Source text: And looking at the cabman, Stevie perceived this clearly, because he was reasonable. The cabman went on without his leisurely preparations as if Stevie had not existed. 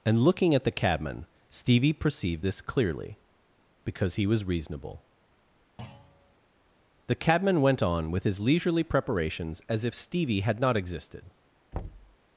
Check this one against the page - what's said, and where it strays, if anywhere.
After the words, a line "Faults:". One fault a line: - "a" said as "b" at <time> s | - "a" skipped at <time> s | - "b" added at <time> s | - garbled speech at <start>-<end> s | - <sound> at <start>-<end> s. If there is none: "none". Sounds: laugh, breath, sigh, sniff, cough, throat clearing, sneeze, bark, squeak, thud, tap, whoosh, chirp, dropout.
And looking at the cabman, Stevie perceived this clearly, because he was reasonable. The cabman went on with his leisurely preparations as if Stevie had not existed.
Faults:
- thud at 5.8-6.4 s
- "without" said as "with" at 8.1 s
- thud at 11.7-12.2 s